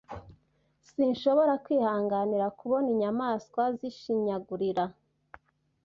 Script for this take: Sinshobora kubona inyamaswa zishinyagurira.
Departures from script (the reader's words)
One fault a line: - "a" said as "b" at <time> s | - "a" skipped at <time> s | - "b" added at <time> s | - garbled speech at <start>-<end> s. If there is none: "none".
- "kwihanganira" added at 1.6 s